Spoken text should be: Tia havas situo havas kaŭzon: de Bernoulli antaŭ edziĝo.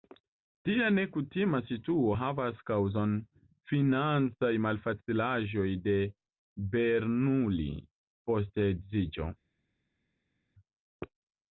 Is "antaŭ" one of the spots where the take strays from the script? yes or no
yes